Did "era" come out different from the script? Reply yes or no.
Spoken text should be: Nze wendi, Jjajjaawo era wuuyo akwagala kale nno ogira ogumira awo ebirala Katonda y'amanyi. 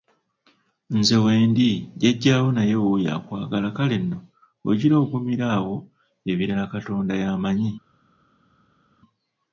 yes